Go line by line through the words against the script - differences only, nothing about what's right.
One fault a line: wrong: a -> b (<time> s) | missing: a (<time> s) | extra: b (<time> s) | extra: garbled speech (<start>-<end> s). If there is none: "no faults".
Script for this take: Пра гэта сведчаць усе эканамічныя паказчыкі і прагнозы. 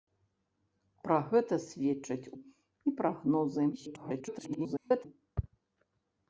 missing: усе эканамічныя паказчыкі (2.3 s)
extra: garbled speech (3.7-5.1 s)